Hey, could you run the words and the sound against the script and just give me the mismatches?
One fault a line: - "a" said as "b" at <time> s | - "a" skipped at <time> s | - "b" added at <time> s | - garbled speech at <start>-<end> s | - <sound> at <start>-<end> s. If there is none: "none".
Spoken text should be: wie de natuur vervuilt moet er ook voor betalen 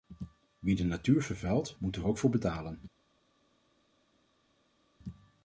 none